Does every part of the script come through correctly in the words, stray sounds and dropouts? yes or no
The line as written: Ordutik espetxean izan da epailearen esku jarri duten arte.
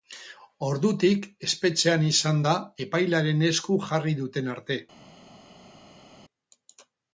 yes